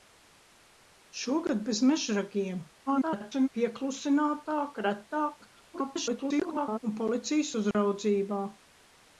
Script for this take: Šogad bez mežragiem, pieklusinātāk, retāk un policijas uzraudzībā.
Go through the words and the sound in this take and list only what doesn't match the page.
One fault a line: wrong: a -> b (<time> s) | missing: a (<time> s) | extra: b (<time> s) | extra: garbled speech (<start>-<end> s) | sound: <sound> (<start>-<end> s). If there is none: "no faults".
extra: garbled speech (2.9-3.5 s)
extra: garbled speech (5.7-6.8 s)
sound: dropout (7.7-7.7 s)